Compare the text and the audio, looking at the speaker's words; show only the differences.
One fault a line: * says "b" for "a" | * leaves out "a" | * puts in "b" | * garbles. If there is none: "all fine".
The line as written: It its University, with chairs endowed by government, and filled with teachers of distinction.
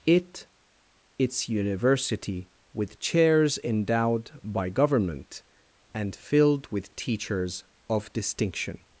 all fine